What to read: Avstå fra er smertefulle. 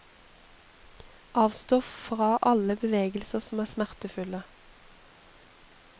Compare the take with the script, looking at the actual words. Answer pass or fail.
fail